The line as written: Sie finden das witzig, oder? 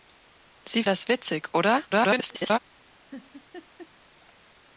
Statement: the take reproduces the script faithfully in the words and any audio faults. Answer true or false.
false